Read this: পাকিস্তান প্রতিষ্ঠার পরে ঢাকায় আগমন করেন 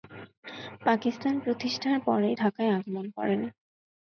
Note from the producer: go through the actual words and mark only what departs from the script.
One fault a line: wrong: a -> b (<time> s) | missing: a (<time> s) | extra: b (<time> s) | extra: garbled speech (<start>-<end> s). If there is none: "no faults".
no faults